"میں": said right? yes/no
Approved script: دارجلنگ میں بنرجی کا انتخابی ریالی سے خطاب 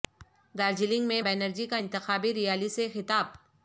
yes